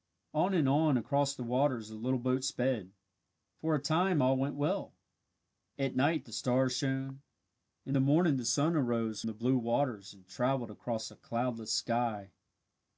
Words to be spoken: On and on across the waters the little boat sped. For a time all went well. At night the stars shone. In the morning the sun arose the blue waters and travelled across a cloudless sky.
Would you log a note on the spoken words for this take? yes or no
no